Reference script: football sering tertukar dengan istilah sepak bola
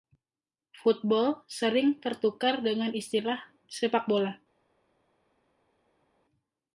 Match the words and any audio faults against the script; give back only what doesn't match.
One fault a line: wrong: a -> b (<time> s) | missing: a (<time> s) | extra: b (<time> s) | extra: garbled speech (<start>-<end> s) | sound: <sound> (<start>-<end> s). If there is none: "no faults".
no faults